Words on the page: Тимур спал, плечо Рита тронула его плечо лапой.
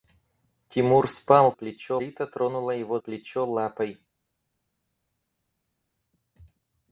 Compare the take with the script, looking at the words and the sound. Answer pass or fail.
pass